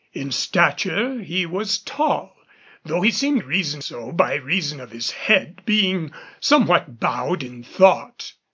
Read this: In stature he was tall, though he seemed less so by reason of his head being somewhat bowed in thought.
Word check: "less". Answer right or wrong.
wrong